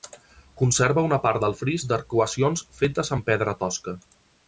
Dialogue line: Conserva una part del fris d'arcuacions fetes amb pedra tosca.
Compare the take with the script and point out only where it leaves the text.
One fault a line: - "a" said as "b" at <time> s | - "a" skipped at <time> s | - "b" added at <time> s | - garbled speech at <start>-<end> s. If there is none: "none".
none